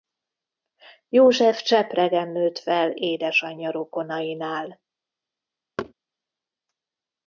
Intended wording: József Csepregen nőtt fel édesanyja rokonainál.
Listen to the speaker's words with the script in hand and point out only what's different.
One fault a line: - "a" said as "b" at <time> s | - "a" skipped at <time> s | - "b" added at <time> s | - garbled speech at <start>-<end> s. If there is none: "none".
none